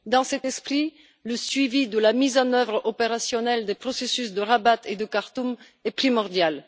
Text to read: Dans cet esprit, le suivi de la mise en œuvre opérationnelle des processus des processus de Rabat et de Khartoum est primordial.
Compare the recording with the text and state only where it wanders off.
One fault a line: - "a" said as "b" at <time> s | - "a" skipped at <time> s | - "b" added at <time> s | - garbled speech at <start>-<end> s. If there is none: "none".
- "des processus" skipped at 4.3 s